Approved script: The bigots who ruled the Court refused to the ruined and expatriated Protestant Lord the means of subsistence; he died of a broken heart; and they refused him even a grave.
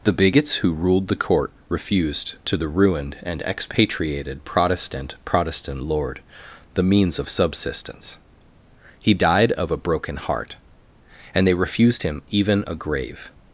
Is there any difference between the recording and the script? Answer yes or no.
yes